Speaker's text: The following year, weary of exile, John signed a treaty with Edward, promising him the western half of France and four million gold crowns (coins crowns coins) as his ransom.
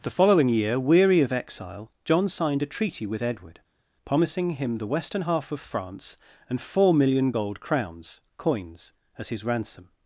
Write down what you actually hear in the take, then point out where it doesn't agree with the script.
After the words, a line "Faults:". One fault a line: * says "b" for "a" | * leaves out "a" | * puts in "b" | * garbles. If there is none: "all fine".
The following year, weary of exile, John signed a treaty with Edward, promising him the western half of France and four million gold crowns (coins) as his ransom.
Faults:
* leaves out "crowns coins"